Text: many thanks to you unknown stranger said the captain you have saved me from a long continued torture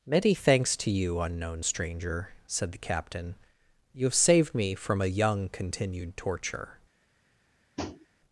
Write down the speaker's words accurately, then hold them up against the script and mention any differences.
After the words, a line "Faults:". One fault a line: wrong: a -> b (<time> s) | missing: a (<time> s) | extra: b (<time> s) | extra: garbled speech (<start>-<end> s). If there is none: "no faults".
many thanks to you unknown stranger said the captain you have saved me from a young continued torture
Faults:
wrong: long -> young (5.1 s)